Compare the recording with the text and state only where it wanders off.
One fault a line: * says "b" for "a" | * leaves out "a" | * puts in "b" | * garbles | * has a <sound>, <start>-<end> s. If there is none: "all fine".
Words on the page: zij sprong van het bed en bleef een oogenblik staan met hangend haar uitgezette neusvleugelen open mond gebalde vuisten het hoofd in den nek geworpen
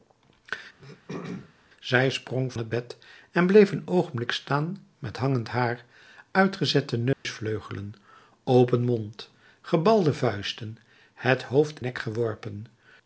* has a throat clearing, 0.8-1.5 s
* leaves out "van"
* has a dropout, 7.1-7.3 s
* leaves out "in den"